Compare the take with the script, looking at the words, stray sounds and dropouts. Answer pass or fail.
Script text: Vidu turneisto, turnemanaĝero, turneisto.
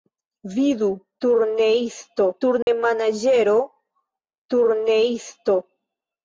fail